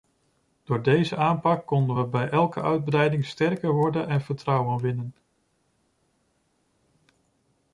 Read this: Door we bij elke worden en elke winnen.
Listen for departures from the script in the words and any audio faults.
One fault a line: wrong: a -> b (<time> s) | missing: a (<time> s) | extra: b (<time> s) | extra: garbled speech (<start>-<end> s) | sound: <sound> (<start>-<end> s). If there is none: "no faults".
extra: deze aanpak konden (0.8 s)
extra: uitbreiding sterker (2.6 s)
wrong: elke -> vertrouwen (4.2 s)